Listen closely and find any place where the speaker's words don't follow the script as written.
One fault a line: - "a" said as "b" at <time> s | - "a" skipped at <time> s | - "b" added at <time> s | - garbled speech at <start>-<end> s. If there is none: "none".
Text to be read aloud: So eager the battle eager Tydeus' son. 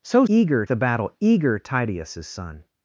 none